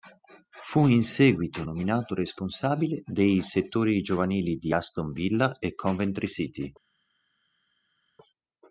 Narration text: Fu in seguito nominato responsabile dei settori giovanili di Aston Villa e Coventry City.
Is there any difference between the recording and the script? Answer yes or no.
no